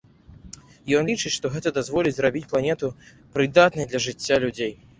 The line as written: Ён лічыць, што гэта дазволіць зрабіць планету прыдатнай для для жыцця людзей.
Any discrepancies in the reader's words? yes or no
yes